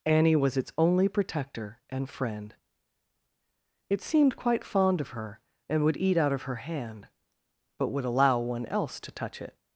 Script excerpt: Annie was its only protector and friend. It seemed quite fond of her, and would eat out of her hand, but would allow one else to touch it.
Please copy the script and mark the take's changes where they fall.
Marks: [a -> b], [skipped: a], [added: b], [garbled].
Annie was its only protector and friend. It seemed quite fond of her, and would eat out of her hand, but would allow one else to touch it.